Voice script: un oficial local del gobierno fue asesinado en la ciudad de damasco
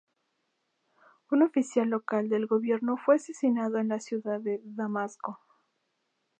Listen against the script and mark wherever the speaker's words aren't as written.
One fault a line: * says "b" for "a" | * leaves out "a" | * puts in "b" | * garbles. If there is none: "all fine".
all fine